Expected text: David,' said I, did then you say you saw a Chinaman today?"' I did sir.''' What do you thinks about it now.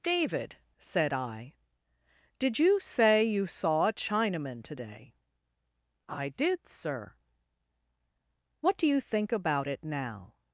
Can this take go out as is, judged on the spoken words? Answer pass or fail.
fail